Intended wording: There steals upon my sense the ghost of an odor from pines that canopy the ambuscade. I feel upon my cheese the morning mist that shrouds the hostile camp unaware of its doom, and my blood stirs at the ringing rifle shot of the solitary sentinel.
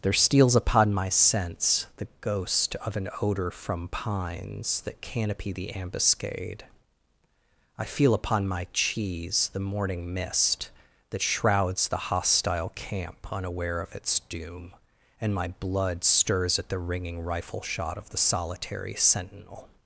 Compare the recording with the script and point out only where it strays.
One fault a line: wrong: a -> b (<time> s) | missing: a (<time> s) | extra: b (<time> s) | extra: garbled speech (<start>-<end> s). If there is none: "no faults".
no faults